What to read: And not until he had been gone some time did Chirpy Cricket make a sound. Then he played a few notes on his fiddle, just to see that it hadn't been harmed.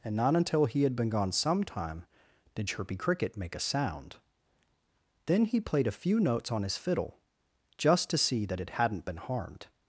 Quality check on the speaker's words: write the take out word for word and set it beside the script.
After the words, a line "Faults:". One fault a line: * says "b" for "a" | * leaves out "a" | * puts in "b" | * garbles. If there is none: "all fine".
And not until he had been gone some time did Chirpy Cricket make a sound. Then he played a few notes on his fiddle, just to see that it hadn't been harmed.
Faults:
all fine